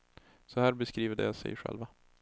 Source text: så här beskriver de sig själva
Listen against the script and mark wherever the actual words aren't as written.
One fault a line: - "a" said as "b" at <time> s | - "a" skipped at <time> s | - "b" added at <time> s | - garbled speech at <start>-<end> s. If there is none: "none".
none